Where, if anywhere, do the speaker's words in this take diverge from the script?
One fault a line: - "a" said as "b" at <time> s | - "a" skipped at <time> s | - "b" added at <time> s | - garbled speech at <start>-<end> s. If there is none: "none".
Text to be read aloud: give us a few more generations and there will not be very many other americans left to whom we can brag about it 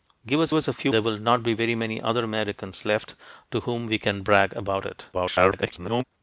- "us" added at 0.5 s
- "more generations and" skipped at 0.9 s
- garbled speech at 5.1-6.0 s